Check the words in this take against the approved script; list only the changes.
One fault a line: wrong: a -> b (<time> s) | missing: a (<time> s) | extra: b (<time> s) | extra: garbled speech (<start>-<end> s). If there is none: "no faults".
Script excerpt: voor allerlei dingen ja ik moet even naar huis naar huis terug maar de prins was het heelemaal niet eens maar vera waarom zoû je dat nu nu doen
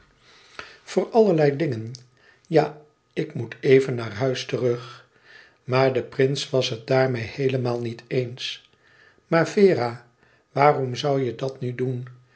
missing: naar huis (4.5 s)
extra: daarmeê (6.9 s)
missing: nu (11.7 s)